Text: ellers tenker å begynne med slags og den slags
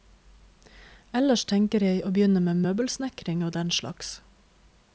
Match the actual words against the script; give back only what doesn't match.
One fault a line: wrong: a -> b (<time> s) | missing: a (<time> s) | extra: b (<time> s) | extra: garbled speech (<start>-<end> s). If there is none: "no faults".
extra: jeg (1.9 s)
wrong: slags -> møbelsnekring (2.6 s)